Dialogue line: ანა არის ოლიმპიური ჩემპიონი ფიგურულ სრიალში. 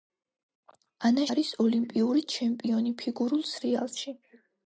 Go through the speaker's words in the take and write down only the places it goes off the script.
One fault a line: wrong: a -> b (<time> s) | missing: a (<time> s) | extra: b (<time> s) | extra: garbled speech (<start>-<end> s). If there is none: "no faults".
no faults